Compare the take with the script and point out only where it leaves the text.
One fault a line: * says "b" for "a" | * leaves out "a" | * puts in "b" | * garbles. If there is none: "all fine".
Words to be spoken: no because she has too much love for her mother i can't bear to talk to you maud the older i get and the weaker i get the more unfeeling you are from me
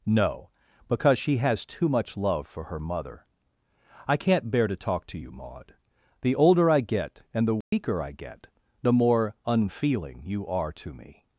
* says "to" for "from"